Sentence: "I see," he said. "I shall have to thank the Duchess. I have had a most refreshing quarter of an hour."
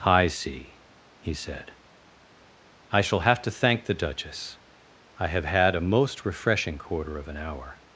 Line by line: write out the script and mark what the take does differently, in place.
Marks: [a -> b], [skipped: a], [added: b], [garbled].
"I see," he said. "I shall have to thank the Duchess. I have had a most refreshing quarter of an hour."